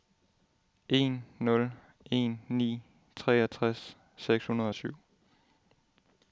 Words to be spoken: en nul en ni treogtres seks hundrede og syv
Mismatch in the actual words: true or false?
false